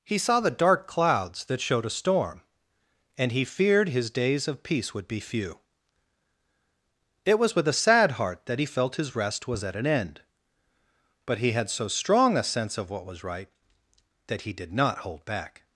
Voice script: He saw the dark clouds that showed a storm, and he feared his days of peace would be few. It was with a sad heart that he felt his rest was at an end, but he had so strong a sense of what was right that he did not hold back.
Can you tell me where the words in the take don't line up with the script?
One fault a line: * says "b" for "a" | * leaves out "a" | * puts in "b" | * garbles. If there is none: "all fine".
all fine